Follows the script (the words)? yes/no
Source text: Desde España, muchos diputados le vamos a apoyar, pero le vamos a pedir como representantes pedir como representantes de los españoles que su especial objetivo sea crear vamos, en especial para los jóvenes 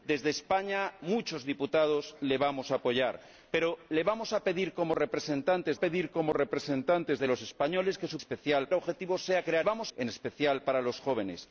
yes